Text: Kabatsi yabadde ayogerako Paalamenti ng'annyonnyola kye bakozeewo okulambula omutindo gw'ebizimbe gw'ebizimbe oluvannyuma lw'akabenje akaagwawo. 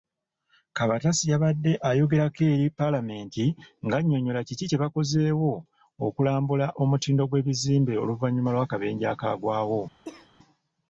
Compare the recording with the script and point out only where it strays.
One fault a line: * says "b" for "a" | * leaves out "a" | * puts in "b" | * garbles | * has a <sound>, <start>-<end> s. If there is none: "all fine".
* puts in "eri"
* puts in "kiki"
* leaves out "gw'ebizimbe"
* has a cough, 10.0-10.3 s